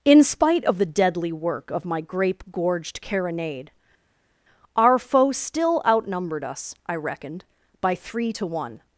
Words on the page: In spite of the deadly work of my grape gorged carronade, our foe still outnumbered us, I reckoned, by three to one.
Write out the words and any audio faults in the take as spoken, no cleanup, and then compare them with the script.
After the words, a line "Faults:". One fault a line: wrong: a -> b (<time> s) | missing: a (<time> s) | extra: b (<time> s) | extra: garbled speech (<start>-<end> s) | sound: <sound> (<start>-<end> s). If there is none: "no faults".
In spite of the deadly work of my grape gorged carronade, our foe still outnumbered us, I reckoned, by three to one.
Faults:
no faults